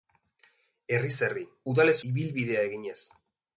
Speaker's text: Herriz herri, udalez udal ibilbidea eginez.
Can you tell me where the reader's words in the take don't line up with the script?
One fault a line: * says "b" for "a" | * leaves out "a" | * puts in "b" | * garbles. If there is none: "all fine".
* leaves out "udal"